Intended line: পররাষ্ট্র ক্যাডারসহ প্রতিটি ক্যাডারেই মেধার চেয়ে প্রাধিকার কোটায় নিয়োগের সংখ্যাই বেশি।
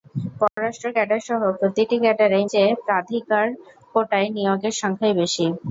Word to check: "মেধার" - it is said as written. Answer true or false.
false